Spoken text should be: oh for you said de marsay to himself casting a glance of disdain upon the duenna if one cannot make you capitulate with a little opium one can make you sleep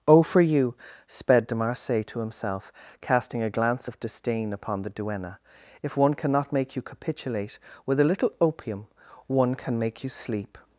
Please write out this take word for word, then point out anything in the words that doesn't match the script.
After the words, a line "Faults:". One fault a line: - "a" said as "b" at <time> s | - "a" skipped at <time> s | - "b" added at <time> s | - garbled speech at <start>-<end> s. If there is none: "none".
oh for you sped de marsay to himself casting a glance of disdain upon the duenna if one cannot make you capitulate with a little opium one can make you sleep
Faults:
- "said" said as "sped" at 1.1 s